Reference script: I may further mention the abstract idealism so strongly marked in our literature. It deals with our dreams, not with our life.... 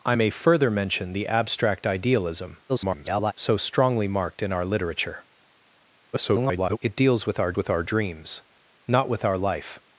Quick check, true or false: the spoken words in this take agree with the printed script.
false